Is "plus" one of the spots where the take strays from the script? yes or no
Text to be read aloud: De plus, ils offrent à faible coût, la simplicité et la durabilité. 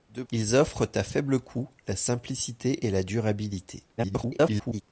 yes